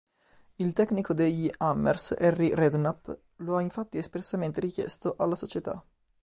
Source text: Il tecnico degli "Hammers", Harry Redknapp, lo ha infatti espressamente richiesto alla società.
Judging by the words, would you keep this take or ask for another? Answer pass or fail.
pass